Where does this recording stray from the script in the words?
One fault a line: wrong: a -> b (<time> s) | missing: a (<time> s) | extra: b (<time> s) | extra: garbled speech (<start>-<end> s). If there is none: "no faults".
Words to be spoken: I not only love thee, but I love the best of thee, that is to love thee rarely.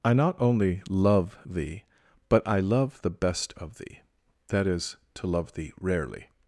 no faults